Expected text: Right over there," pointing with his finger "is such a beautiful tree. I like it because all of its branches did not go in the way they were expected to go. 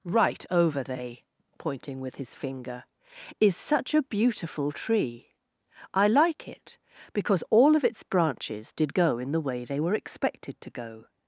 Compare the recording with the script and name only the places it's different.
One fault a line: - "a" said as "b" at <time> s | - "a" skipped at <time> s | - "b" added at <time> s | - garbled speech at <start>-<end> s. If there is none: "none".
- "there" said as "they" at 0.8 s
- "not" skipped at 8.9 s